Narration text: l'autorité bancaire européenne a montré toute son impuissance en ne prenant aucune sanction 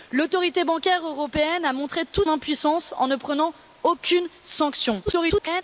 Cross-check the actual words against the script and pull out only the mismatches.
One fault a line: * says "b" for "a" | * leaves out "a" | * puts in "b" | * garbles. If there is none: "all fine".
* leaves out "son"
* garbles